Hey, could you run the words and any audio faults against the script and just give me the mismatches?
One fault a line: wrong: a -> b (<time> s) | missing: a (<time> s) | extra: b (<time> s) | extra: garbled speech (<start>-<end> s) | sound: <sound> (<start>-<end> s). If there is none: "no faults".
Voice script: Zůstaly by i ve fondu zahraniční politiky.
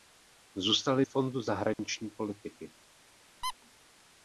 missing: by i ve (1.1 s)
sound: dropout (1.7-1.8 s)
sound: squeak (3.4-3.5 s)